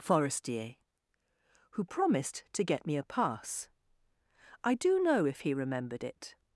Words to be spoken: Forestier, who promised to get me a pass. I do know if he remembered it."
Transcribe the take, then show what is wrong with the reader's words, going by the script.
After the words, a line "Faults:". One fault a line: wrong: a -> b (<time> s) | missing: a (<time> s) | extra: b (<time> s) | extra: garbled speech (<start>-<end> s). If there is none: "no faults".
Forestier, who promised to get me a pass. I do know if he remembered it."
Faults:
no faults